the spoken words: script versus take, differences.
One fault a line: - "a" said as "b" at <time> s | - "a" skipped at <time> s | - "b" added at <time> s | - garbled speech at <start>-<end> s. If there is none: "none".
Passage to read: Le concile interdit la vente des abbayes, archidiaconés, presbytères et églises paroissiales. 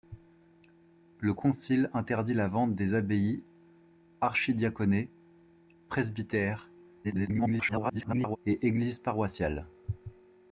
- garbled speech at 7.0-8.4 s